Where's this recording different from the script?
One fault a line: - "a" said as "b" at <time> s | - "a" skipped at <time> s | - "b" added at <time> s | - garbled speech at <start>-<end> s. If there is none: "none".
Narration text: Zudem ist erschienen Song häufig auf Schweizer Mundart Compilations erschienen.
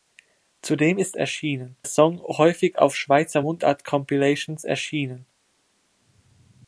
none